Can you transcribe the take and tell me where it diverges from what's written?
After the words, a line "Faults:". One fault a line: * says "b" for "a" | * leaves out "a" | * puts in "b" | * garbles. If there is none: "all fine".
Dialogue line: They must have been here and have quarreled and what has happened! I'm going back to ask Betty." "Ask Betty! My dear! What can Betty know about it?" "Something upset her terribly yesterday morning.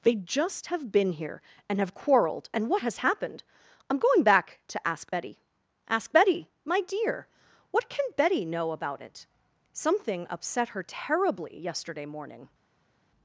They just have been here and have quarreled and what has happened! I'm going back to ask Betty." "Ask Betty! My dear! What can Betty know about it?" "Something upset her terribly yesterday morning.
Faults:
* says "just" for "must"